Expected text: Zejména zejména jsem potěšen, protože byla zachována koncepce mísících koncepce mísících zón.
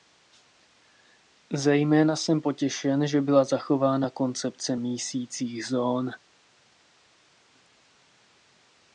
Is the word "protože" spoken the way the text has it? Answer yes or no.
no